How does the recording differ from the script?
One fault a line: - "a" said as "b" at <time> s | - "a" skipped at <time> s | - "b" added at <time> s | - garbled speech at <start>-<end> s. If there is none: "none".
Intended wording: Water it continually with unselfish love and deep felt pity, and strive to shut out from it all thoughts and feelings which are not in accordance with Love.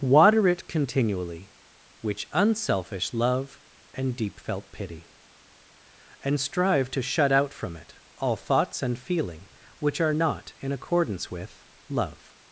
- "with" said as "which" at 2.0 s
- "feelings" said as "feeling" at 9.0 s